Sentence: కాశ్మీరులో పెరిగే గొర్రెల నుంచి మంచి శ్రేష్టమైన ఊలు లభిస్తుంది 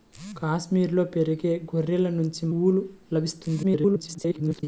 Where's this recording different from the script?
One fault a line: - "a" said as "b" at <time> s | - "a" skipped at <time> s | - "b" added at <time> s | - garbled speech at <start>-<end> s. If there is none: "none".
- "మంచి శ్రేష్టమైన" skipped at 2.4 s
- garbled speech at 3.6-4.6 s